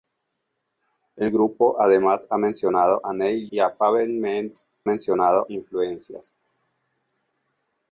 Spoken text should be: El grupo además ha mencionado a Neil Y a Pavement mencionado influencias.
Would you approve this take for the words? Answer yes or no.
yes